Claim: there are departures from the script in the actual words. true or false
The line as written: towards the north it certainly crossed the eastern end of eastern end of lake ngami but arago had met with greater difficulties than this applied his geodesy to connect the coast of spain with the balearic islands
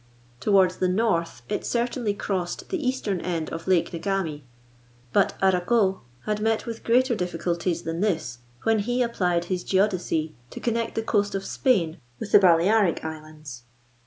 true